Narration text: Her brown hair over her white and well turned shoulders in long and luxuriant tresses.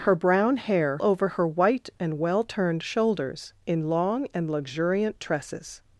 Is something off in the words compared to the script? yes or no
no